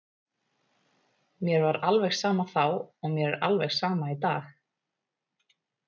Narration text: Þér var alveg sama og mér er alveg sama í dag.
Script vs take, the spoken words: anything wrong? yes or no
yes